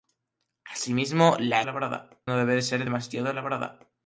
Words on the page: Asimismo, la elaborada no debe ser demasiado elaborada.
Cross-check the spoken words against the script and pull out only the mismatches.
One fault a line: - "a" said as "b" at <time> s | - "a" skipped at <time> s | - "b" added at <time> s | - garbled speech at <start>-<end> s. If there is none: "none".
none